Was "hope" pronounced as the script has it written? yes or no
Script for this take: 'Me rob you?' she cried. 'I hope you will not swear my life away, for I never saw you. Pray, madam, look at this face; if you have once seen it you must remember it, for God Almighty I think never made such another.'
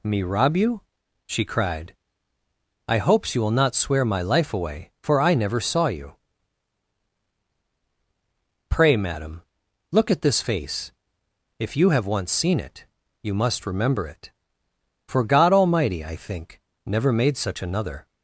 no